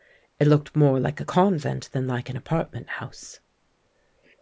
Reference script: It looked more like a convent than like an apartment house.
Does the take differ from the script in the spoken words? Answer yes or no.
no